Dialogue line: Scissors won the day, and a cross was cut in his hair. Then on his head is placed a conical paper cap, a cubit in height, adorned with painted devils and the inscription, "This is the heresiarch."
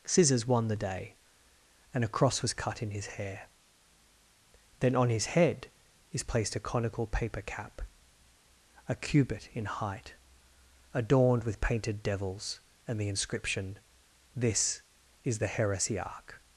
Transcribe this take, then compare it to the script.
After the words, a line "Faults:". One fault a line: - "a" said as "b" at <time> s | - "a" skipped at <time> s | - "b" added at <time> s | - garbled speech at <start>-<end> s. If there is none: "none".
Scissors won the day, and a cross was cut in his hair. Then on his head is placed a conical paper cap, a cubit in height, adorned with painted devils and the inscription, "This is the heresiarch."
Faults:
none